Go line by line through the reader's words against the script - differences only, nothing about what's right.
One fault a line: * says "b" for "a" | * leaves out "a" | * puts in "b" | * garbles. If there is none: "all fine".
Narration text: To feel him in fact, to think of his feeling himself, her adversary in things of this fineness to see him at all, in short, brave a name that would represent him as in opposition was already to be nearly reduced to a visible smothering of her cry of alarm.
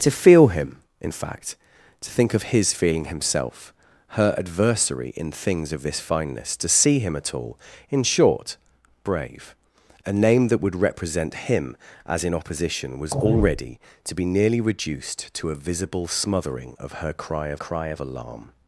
* puts in "cry of"